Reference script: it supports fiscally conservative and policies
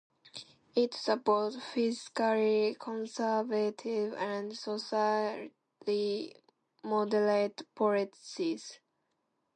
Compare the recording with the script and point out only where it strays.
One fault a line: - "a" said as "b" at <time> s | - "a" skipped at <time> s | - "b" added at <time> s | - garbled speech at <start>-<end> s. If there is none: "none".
- "socially moderate" added at 4.6 s